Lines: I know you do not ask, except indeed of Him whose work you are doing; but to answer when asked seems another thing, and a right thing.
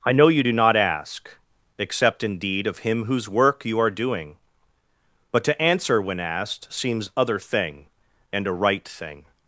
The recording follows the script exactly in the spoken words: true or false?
false